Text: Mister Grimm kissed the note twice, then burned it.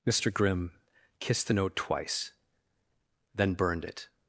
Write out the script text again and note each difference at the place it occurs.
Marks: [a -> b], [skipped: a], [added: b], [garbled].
Mister Grimm kissed the note twice, then burned it.